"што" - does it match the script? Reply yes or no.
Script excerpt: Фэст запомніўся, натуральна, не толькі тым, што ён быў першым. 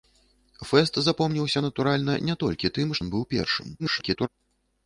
no